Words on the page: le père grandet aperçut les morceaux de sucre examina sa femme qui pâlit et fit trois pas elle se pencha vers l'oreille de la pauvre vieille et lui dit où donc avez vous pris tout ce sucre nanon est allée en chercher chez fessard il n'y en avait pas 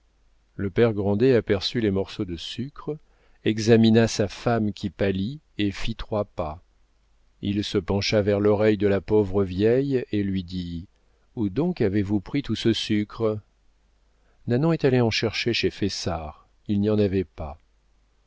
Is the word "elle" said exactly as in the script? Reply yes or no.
no